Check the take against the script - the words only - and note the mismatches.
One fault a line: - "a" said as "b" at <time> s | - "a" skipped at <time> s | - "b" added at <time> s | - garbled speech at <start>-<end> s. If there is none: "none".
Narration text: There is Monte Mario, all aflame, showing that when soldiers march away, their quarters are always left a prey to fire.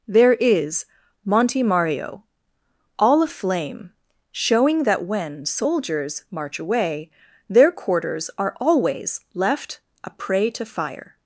none